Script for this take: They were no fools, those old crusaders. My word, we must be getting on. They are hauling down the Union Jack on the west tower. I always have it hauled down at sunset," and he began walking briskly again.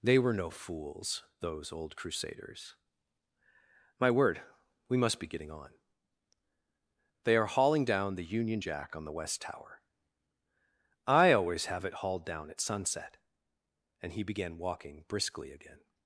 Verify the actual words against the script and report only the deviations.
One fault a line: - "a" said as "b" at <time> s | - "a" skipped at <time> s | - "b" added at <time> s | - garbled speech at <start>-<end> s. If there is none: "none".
none